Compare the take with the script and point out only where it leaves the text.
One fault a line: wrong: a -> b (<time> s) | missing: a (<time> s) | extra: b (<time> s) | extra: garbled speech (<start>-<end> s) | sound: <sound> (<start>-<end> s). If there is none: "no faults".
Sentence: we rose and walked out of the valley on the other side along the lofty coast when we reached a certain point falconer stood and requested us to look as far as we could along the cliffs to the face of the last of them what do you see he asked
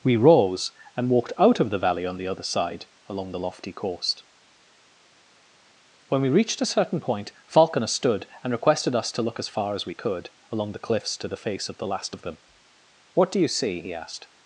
no faults